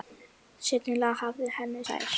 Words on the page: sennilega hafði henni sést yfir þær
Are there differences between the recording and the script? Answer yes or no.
yes